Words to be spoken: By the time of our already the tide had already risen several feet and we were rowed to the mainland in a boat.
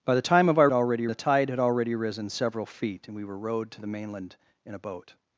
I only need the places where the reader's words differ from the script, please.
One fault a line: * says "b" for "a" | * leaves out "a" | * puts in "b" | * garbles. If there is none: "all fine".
all fine